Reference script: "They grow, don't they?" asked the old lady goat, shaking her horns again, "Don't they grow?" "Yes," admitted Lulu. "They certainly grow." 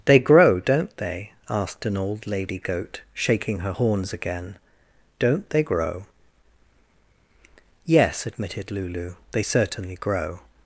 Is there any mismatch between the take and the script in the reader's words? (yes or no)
yes